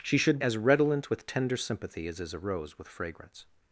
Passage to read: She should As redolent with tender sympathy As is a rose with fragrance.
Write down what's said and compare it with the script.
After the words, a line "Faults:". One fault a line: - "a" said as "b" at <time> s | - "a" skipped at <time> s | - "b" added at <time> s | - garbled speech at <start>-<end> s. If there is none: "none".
She should As redolent with tender sympathy As is a rose with fragrance.
Faults:
none